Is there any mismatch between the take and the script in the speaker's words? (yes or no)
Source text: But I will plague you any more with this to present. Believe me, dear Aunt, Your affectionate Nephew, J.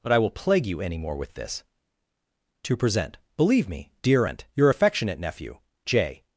no